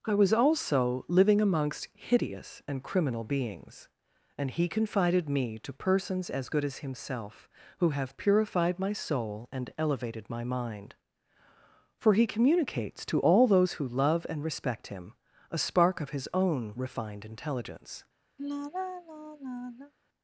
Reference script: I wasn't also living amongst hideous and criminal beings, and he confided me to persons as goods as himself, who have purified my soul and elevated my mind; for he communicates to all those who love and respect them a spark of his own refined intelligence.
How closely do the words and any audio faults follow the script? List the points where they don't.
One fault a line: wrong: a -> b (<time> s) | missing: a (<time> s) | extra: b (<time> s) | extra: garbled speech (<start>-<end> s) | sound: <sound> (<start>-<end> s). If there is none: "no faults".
wrong: wasn't -> was (0.1 s)
wrong: goods -> good (6.5 s)
wrong: them -> him (14.9 s)
sound: sigh (18.4-19.9 s)